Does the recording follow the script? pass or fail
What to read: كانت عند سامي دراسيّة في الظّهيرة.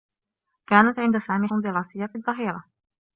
pass